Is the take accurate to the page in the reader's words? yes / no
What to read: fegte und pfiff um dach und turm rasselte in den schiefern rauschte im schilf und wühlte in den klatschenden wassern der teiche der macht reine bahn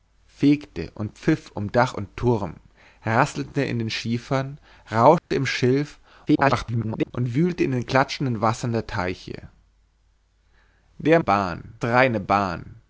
no